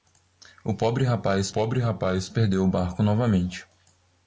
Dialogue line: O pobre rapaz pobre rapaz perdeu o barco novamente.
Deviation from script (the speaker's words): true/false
false